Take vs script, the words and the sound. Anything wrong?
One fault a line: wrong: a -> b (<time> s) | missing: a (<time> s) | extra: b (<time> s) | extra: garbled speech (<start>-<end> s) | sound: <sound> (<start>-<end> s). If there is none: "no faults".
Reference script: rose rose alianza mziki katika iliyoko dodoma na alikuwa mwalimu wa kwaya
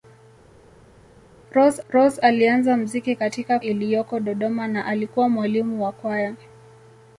no faults